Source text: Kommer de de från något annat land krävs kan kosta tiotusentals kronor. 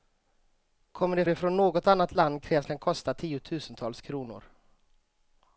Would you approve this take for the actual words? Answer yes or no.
yes